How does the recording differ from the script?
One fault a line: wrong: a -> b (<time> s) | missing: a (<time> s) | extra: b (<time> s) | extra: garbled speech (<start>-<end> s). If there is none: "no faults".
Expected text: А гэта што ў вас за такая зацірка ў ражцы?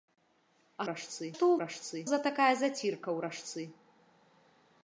wrong: гэта -> ражцы (0.9 s)
wrong: вас -> ражцы (1.7 s)